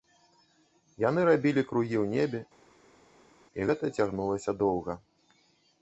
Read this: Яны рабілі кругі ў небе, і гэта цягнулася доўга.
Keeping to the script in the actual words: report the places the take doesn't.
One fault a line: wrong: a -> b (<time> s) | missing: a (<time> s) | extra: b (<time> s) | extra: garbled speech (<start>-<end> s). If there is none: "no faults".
no faults